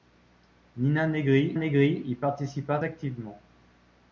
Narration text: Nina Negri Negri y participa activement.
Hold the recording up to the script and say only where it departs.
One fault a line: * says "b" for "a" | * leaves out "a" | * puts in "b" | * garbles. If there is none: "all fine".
all fine